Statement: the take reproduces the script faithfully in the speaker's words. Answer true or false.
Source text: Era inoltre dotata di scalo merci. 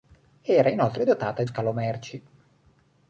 true